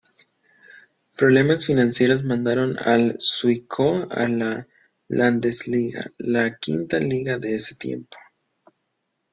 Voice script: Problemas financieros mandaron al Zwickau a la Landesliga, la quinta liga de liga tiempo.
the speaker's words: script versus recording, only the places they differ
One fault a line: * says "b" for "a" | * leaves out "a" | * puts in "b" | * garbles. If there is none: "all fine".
* says "ese" for "liga"